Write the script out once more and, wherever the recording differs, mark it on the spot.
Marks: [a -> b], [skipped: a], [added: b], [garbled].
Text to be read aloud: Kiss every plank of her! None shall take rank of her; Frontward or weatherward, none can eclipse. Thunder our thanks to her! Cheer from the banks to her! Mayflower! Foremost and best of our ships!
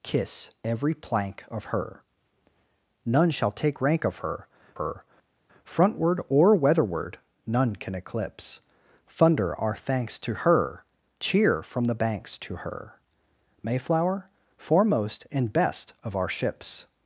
Kiss every plank of her! None shall take rank of her; [added: her] Frontward or weatherward, none can eclipse. Thunder our thanks to her! Cheer from the banks to her! Mayflower! Foremost and best of our ships!